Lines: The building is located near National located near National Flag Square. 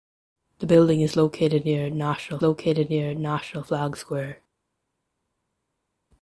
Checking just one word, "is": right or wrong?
right